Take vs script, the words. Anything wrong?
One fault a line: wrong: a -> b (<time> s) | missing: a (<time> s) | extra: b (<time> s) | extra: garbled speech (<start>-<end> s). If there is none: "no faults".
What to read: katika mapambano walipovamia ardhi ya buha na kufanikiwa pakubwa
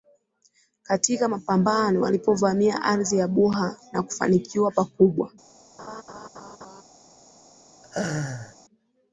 no faults